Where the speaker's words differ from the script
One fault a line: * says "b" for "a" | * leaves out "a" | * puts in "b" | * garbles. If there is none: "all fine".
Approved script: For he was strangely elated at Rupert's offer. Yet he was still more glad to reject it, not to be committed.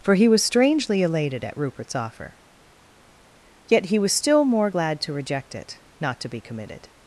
all fine